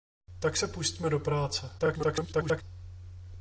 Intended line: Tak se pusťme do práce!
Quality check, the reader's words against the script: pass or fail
fail